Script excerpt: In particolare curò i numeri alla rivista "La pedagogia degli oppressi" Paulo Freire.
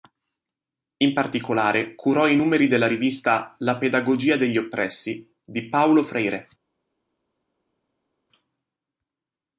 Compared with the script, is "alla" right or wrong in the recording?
wrong